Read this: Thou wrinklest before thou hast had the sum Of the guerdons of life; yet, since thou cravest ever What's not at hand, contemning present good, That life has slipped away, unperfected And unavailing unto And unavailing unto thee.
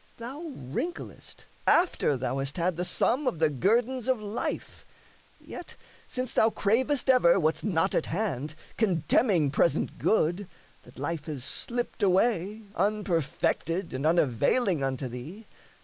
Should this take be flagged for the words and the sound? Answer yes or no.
yes